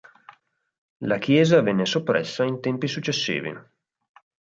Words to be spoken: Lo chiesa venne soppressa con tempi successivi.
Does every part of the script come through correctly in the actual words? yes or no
no